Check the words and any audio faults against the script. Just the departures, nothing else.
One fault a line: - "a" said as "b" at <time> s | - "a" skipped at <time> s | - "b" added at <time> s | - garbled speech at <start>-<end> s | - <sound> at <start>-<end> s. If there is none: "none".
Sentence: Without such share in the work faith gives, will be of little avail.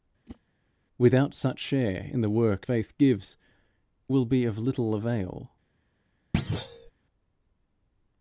- whoosh at 0.3-0.4 s
- thud at 6.3-6.9 s